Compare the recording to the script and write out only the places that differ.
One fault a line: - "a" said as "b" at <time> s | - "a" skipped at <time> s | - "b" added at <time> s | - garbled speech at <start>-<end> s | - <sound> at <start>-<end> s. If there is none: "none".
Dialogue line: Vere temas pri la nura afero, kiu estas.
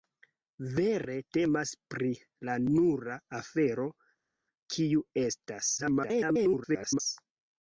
- garbled speech at 5.8-7.0 s